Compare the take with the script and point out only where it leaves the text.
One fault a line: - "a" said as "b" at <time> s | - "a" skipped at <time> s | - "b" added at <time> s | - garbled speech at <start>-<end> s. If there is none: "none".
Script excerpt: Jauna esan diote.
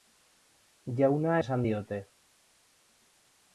none